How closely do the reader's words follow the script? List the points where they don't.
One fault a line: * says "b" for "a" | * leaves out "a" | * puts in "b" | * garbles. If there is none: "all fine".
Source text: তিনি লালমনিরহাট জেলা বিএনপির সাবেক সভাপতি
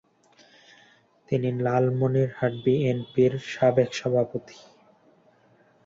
* leaves out "জেলা"